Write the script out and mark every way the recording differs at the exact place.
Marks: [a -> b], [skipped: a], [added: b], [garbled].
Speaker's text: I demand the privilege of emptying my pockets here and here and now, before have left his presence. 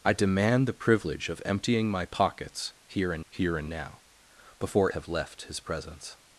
I demand the privilege of emptying my pockets here and here and now, before have left his presence.